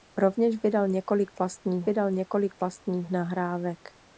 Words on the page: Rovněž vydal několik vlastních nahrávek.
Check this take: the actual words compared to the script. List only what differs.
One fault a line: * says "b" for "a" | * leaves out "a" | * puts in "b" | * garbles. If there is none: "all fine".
* puts in "vydal několik vlastních"